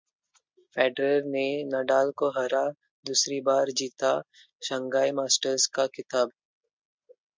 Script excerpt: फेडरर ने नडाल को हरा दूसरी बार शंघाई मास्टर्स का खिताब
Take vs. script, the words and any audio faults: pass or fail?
fail